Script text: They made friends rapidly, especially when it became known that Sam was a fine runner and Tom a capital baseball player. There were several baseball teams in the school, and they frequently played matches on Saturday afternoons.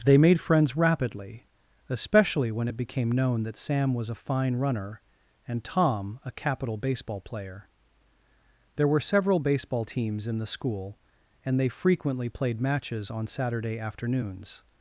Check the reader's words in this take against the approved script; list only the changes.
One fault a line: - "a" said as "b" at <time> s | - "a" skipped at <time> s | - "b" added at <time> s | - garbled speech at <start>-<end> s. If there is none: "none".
none